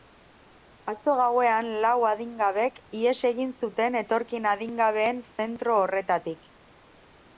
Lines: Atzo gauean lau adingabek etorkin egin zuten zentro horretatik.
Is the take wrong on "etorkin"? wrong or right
wrong